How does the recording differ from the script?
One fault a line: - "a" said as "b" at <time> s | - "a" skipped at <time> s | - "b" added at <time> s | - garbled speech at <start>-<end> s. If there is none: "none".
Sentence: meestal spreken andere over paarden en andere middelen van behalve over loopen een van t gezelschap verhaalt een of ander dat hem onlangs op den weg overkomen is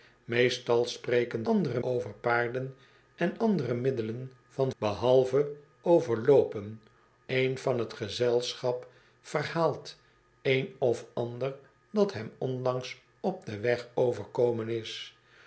none